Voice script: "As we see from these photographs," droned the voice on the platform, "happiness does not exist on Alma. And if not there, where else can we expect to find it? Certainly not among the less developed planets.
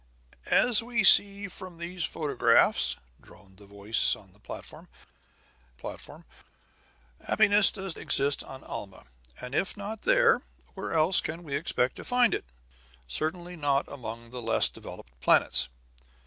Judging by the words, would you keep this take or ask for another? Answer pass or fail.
fail